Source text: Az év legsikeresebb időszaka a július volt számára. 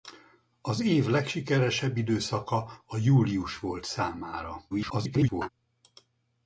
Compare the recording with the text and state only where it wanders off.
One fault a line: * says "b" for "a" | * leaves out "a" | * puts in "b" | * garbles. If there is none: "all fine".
* garbles